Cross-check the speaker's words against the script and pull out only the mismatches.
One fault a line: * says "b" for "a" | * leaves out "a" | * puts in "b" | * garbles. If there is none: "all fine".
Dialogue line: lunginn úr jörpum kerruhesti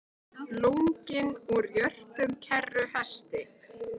all fine